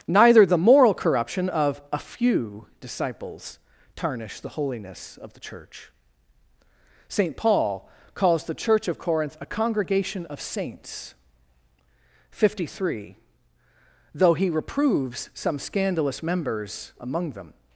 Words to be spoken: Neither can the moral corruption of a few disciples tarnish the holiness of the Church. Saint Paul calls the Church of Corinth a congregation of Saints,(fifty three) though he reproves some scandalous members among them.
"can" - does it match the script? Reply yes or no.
no